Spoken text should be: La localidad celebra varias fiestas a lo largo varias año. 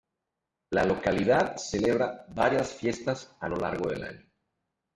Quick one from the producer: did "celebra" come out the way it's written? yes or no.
yes